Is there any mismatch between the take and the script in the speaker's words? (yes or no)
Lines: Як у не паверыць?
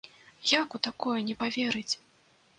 yes